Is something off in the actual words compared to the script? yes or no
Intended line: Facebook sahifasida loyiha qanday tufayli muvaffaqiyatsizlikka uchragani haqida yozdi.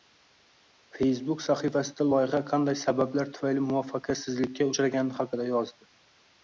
yes